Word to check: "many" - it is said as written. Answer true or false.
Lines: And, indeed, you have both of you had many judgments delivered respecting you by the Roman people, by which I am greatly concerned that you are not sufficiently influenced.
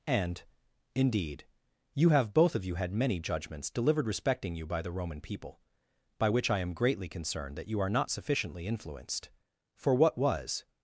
true